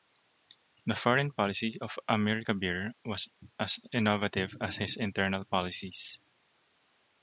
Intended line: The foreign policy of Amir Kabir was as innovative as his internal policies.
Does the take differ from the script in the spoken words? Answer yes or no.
no